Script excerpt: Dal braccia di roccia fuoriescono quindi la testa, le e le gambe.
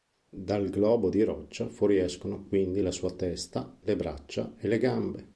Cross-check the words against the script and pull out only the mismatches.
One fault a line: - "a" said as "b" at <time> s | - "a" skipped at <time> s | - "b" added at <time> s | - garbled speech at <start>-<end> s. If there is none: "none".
- "braccia" said as "globo" at 0.7 s
- "sua" added at 2.9 s
- "braccia" added at 4.0 s